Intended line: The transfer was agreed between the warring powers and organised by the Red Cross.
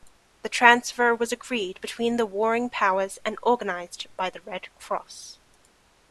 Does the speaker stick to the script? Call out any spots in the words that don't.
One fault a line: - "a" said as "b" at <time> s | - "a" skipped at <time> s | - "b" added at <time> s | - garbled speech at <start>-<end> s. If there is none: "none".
none